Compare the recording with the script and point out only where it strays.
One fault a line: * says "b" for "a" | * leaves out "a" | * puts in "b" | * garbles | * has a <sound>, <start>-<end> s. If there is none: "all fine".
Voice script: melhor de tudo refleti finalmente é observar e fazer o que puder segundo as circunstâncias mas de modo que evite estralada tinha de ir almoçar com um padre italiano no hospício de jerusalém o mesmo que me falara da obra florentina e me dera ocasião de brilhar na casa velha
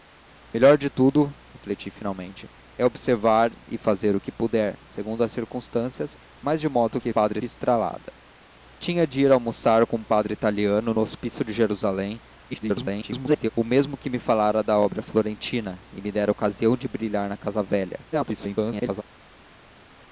* says "padre" for "evite"
* garbles
* garbles